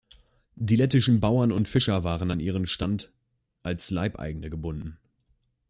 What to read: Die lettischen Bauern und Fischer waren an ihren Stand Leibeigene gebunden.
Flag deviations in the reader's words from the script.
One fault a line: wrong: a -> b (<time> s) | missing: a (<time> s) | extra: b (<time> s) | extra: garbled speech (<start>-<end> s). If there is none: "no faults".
extra: als (3.6 s)